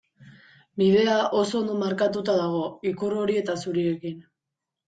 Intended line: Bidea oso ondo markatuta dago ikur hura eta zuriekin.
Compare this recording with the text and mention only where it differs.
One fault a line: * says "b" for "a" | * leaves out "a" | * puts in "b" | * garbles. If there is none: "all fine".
* says "hori" for "hura"